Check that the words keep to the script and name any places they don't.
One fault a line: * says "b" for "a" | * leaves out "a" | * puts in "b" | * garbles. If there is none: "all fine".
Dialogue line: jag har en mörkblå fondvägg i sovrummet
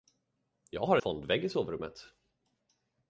* leaves out "en mörkblå"